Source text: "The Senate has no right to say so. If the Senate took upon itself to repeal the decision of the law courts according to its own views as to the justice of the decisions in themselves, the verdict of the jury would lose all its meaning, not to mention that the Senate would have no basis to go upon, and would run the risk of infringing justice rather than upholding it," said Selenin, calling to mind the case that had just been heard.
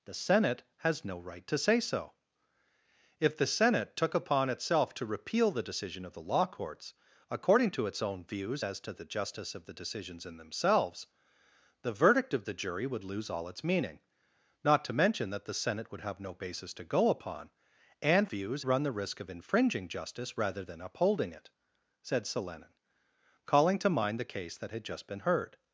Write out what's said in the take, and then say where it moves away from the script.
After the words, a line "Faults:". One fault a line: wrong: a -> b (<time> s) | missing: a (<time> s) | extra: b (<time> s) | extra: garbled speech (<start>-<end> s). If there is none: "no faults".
"The Senate has no right to say so. If the Senate took upon itself to repeal the decision of the law courts according to its own views as to the justice of the decisions in themselves, the verdict of the jury would lose all its meaning, not to mention that the Senate would have no basis to go upon, and views run the risk of infringing justice rather than upholding it," said Selenin, calling to mind the case that had just been heard.
Faults:
wrong: would -> views (18.3 s)